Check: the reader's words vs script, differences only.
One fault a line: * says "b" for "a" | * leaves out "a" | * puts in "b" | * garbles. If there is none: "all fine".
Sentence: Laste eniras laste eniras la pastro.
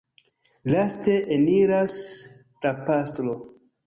* leaves out "laste eniras"